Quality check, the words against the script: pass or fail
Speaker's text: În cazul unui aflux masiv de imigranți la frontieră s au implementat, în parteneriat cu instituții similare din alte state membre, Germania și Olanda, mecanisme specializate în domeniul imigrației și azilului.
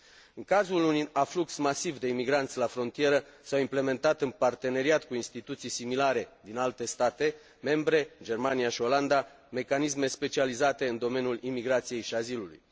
pass